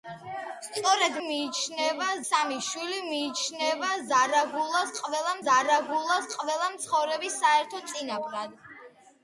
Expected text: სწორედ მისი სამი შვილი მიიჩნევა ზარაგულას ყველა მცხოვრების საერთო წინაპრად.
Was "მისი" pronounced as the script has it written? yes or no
no